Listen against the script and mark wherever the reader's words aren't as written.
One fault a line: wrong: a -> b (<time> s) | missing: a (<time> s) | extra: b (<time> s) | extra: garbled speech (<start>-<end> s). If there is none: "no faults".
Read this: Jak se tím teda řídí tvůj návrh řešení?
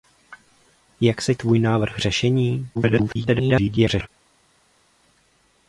missing: tím teda řídí (1.4 s)
extra: garbled speech (2.7-4.1 s)